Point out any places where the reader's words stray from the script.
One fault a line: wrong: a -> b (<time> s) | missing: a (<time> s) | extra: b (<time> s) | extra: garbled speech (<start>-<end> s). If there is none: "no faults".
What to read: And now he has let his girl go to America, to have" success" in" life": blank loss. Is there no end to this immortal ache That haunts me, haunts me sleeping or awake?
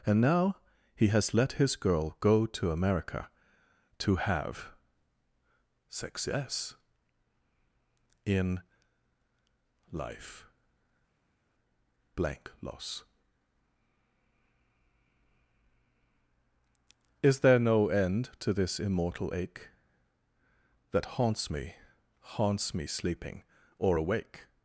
no faults